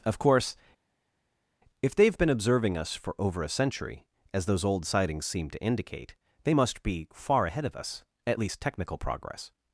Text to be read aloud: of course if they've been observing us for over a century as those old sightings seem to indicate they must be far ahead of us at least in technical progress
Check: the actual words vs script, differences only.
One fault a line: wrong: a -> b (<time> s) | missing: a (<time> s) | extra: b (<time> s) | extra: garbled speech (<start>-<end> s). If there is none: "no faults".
missing: in (8.6 s)